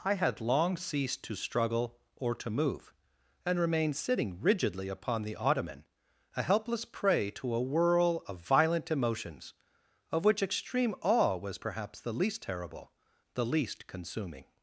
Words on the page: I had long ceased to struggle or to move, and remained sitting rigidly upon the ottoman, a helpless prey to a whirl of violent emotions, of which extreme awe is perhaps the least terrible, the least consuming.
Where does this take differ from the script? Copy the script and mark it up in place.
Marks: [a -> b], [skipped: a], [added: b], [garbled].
I had long ceased to struggle or to move, and remained sitting rigidly upon the ottoman, a helpless prey to a whirl of violent emotions, of which extreme awe [is -> was] perhaps the least terrible, the least consuming.